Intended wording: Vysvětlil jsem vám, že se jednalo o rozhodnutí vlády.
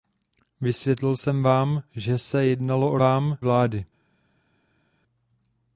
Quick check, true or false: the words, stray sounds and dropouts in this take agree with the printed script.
false